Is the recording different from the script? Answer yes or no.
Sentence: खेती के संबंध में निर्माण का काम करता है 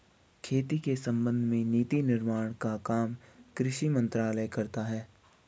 yes